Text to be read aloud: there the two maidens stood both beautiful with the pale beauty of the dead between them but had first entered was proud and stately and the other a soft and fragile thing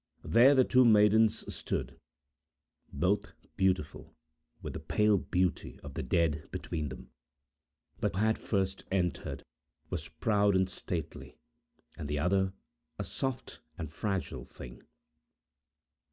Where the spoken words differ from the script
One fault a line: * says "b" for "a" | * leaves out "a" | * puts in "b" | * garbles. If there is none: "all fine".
all fine